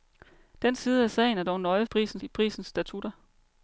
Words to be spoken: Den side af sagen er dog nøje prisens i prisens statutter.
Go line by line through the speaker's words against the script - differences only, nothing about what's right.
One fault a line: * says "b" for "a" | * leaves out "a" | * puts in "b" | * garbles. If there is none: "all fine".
all fine